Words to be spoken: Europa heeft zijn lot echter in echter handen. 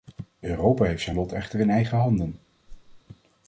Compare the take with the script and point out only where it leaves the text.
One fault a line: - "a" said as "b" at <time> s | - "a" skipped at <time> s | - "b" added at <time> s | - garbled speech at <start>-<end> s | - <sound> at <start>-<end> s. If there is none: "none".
- "echter" said as "eigen" at 1.7 s
- whoosh at 2.7-3.0 s